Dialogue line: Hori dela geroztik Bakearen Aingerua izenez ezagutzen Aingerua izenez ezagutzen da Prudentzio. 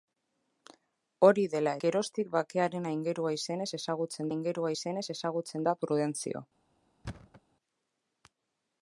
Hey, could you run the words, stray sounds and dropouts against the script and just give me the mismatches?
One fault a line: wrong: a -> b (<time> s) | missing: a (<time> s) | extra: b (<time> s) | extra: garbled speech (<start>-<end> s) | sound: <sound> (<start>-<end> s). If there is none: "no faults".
sound: thud (7.0-7.4 s)